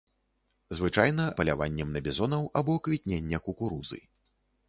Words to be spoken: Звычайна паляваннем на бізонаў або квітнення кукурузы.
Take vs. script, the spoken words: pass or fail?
pass